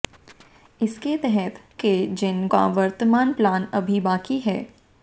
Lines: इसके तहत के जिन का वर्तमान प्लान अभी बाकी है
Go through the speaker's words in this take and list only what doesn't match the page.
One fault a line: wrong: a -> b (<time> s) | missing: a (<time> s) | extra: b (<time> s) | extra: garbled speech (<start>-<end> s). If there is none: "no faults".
no faults